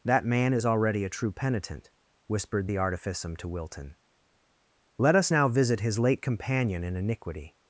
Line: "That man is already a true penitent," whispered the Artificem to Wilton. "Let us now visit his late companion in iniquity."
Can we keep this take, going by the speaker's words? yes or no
yes